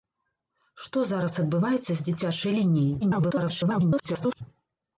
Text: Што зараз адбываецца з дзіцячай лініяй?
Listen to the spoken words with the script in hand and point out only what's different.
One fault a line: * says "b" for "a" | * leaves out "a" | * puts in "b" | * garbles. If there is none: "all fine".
* garbles